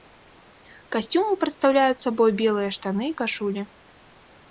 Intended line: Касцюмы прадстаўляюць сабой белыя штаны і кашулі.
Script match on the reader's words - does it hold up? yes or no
yes